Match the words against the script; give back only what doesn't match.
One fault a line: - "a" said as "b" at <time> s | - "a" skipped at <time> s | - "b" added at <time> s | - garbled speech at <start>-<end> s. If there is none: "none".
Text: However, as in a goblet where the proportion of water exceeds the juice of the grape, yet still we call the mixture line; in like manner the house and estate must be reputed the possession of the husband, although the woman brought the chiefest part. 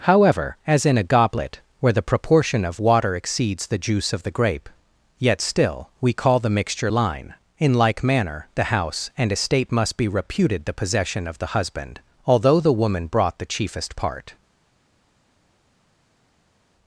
none